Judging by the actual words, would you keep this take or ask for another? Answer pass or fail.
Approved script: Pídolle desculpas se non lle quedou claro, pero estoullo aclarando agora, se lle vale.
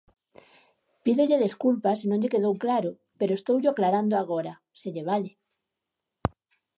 pass